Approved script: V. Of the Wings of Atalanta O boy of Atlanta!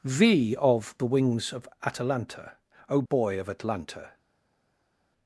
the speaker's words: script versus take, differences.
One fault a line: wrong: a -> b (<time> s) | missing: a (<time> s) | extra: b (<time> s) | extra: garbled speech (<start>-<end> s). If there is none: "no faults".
no faults